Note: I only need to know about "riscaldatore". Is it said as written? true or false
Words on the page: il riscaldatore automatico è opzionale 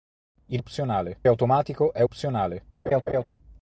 false